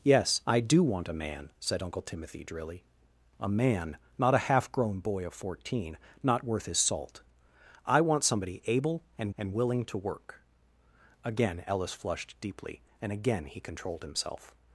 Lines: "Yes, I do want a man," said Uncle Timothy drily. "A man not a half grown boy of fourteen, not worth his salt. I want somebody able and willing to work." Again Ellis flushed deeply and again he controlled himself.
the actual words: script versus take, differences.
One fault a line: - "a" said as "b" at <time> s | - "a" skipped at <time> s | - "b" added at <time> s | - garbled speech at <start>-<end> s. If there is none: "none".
- "and" added at 9.4 s